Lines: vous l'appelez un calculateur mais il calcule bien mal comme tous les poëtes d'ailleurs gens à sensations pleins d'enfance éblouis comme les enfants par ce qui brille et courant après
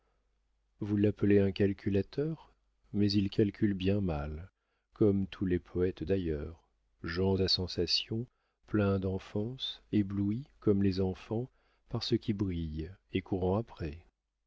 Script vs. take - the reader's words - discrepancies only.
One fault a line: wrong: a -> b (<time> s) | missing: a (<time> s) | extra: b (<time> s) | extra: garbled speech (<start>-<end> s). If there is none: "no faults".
no faults